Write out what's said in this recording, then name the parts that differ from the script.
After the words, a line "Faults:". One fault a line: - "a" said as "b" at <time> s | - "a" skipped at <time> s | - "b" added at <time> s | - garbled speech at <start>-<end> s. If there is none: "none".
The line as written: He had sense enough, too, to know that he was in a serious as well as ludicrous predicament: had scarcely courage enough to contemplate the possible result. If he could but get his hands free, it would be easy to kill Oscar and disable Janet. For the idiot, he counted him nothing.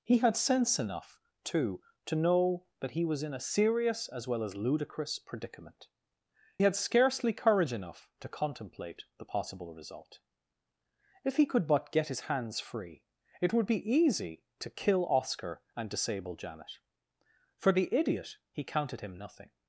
He had sense enough, too, to know that he was in a serious as well as ludicrous predicament: had scarcely courage enough to contemplate the possible result. If he could but get his hands free, it would be easy to kill Oscar and disable Janet. For the idiot, he counted him nothing.
Faults:
none